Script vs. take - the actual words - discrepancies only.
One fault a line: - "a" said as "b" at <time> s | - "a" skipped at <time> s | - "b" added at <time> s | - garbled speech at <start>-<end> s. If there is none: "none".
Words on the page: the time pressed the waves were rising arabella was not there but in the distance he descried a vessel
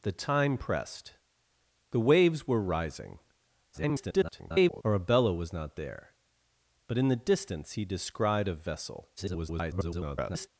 - garbled speech at 3.7-4.8 s
- garbled speech at 9.2-10.5 s